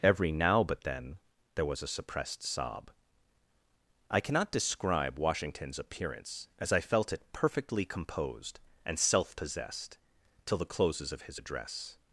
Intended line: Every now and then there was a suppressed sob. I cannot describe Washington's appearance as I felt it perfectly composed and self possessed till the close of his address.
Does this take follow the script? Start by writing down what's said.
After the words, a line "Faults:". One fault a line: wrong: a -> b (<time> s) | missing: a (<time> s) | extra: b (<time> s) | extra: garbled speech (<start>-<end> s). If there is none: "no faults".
Every now but then there was a suppressed sob. I cannot describe Washington's appearance as I felt it perfectly composed and self possessed till the closes of his address.
Faults:
wrong: and -> but (0.6 s)
wrong: close -> closes (10.7 s)